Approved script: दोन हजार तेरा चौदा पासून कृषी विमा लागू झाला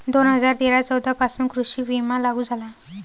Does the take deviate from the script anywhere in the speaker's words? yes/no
no